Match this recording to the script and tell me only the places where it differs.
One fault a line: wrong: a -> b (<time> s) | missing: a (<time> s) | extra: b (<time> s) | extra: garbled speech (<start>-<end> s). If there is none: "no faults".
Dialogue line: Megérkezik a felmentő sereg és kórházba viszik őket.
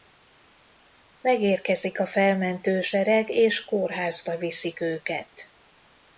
no faults